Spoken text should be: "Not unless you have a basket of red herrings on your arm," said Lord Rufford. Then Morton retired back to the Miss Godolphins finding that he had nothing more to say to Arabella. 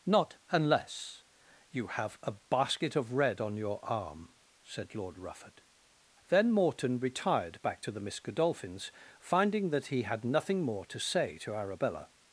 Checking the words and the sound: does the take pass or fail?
fail